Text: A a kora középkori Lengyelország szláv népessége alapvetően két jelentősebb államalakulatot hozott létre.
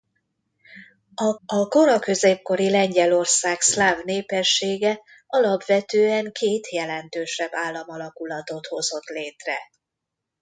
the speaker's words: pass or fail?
pass